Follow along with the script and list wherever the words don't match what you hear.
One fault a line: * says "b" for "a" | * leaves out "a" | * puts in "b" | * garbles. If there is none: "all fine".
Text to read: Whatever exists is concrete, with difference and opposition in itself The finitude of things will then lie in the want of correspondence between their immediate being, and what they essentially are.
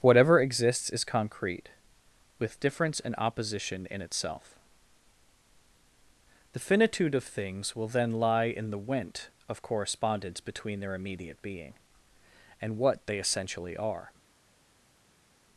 * says "went" for "want"